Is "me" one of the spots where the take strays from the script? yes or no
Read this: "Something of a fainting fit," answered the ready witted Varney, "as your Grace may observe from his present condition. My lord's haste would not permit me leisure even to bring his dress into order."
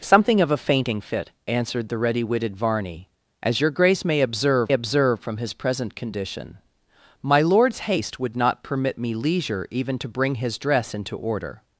no